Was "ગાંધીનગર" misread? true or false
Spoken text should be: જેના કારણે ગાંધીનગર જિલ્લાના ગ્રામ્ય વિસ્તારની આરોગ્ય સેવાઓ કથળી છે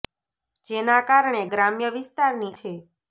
true